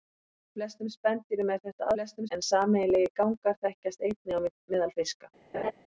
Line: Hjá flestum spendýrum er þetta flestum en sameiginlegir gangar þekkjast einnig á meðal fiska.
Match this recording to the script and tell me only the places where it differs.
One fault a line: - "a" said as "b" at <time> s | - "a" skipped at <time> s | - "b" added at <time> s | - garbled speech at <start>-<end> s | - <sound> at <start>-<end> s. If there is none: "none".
- laugh at 5.5-5.7 s